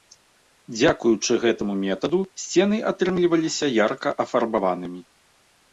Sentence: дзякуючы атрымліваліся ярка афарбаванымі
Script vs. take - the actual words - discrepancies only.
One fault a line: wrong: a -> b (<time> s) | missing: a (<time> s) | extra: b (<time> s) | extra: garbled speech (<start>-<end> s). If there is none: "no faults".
extra: гэтаму метаду сцены (1.4 s)